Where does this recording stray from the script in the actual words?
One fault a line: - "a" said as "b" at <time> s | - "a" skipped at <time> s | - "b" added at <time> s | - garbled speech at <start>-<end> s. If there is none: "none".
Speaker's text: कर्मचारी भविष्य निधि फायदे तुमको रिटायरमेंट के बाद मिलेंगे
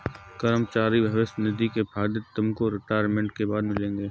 - "के" added at 1.7 s